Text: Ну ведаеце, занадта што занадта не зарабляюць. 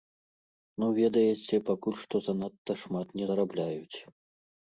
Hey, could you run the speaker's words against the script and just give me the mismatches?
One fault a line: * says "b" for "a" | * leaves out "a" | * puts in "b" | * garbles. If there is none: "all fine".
* says "пакуль" for "занадта"
* puts in "шмат"